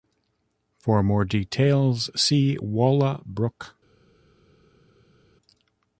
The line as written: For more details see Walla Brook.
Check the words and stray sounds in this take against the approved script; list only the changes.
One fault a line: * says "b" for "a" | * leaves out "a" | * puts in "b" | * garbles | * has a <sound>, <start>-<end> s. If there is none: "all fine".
all fine